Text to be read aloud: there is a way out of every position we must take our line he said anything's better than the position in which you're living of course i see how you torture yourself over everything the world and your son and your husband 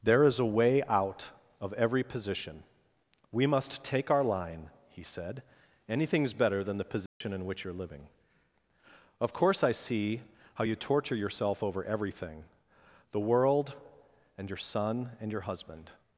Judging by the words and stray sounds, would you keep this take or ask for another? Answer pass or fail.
fail